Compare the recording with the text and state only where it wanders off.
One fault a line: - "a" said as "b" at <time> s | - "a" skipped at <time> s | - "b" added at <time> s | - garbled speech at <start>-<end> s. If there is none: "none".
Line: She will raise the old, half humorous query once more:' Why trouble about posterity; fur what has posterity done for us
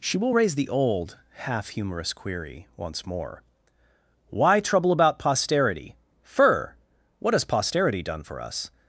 none